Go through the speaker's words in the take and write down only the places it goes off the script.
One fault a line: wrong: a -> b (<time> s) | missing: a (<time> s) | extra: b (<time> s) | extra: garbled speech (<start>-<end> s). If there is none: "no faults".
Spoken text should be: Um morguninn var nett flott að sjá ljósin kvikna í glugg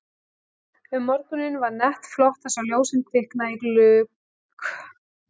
no faults